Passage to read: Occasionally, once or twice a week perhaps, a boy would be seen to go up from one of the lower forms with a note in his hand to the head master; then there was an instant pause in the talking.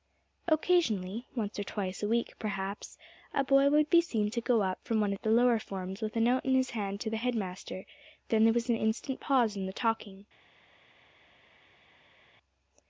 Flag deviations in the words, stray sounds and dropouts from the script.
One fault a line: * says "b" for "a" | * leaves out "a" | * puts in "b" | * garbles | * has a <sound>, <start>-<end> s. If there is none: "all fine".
all fine